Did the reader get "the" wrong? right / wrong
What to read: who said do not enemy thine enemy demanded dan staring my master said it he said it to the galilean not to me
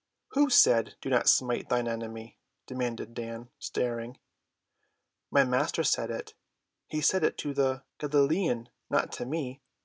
right